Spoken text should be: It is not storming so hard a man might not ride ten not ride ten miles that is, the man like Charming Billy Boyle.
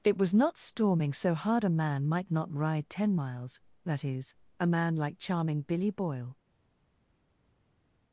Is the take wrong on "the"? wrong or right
wrong